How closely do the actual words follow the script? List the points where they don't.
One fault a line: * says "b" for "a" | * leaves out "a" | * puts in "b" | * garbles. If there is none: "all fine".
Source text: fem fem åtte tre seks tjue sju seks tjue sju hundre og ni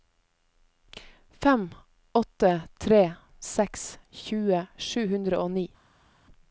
* leaves out "fem"
* leaves out "seks tjue sju"